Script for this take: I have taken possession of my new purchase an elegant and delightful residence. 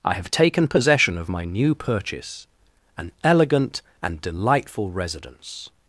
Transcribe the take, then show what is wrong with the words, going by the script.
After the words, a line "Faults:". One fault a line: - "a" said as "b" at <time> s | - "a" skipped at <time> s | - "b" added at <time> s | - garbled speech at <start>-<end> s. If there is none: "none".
I have taken possession of my new purchase an elegant and delightful residence.
Faults:
none